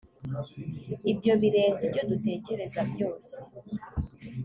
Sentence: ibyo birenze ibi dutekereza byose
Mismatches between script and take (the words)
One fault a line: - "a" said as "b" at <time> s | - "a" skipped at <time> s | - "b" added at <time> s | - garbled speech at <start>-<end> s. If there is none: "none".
- "ibi" said as "ibyo" at 1.9 s